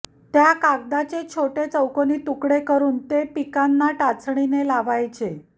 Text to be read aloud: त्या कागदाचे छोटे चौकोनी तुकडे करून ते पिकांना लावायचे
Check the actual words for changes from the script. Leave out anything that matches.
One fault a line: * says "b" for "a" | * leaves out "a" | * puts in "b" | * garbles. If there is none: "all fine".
* puts in "टाचणीने"